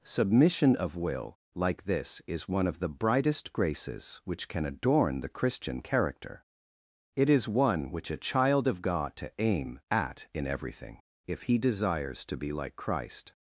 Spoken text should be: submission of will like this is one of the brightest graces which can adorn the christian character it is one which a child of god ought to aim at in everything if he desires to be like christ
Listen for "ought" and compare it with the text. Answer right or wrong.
wrong